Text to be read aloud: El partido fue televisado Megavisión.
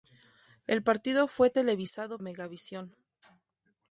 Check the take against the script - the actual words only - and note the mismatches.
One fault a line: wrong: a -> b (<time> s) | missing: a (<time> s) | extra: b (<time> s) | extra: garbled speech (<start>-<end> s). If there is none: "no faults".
no faults